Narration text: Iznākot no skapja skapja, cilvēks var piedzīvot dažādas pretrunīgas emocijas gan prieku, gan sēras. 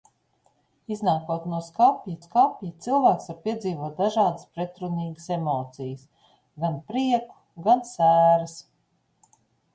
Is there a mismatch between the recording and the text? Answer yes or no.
no